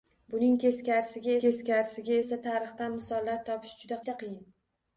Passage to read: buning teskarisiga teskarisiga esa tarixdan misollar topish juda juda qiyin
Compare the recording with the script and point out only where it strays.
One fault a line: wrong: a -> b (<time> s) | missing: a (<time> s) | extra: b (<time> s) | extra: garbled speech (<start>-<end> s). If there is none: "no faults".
no faults